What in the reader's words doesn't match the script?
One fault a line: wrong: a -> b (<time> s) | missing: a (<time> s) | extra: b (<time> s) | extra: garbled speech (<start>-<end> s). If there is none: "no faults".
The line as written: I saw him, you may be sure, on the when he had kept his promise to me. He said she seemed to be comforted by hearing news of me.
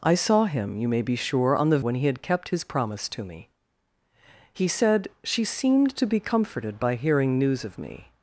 no faults